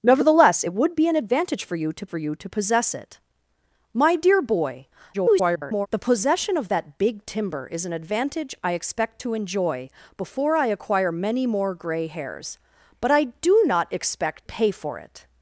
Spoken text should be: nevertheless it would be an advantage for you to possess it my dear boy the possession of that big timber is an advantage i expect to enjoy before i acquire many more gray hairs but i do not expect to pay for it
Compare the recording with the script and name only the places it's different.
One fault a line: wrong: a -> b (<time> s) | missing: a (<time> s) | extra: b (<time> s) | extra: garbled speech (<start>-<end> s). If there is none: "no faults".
extra: for you to (2.0 s)
extra: garbled speech (5.1-5.9 s)
missing: to (14.5 s)